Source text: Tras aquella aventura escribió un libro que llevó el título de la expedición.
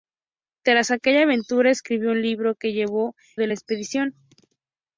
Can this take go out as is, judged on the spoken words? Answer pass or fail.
fail